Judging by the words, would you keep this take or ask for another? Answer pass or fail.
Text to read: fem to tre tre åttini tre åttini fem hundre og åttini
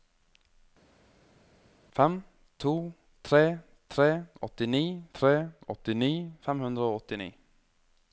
pass